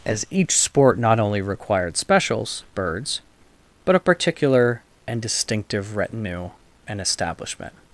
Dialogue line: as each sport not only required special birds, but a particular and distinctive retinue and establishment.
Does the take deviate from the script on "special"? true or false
true